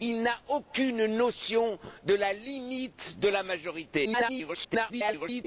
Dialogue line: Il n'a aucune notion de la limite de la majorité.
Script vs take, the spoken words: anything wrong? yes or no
yes